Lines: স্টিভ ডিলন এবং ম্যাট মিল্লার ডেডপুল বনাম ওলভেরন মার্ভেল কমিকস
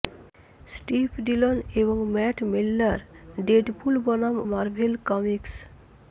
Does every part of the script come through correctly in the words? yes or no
no